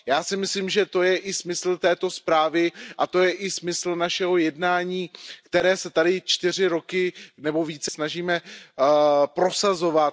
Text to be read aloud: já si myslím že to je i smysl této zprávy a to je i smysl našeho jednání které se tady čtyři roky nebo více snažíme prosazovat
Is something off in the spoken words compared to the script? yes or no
no